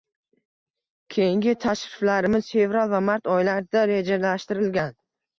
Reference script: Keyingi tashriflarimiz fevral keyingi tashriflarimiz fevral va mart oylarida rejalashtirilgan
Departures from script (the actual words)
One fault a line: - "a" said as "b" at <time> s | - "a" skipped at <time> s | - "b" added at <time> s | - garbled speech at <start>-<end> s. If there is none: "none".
- "keyingi tashriflarimiz fevral" skipped at 2.9 s